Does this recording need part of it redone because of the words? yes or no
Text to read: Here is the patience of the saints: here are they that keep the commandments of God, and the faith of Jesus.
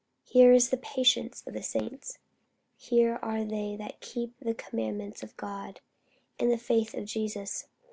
no